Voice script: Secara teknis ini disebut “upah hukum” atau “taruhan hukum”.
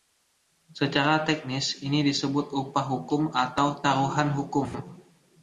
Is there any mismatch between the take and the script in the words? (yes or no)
no